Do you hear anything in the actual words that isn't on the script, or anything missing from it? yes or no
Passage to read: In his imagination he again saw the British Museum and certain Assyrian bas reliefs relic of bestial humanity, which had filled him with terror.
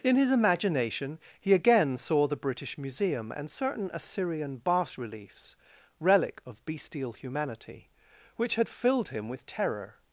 no